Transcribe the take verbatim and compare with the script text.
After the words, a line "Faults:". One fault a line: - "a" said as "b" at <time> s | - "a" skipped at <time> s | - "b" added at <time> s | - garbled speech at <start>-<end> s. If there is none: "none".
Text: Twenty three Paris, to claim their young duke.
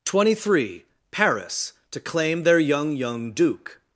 Twenty three Paris, to claim their young young duke.
Faults:
- "young" added at 3.0 s